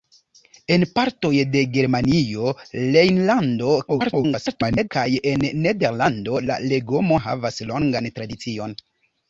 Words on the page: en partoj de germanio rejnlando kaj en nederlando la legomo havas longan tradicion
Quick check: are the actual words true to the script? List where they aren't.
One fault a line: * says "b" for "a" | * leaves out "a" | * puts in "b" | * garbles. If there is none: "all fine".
* garbles